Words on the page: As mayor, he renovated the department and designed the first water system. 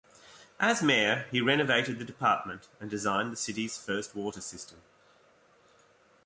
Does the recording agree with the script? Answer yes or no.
no